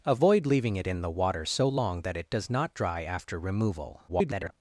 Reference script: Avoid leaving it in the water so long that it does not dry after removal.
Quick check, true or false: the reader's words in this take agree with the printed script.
false